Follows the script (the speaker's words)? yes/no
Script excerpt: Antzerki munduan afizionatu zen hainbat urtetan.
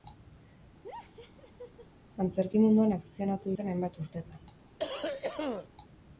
yes